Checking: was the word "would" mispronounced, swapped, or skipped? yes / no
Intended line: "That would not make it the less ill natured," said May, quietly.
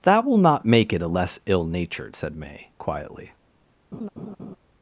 yes